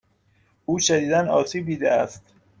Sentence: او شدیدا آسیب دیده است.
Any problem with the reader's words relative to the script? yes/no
no